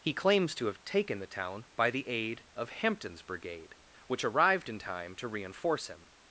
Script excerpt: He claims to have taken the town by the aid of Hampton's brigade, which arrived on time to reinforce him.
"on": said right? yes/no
no